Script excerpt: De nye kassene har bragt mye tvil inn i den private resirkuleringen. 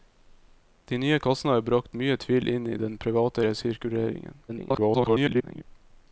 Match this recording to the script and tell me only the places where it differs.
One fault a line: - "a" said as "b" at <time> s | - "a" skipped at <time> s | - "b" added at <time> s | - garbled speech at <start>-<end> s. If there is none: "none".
- garbled speech at 4.5-5.6 s